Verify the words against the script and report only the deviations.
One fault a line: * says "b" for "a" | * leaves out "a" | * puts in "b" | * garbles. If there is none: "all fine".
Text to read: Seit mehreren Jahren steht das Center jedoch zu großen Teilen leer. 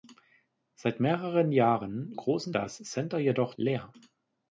* says "großen" for "steht"
* leaves out "zu großen Teilen"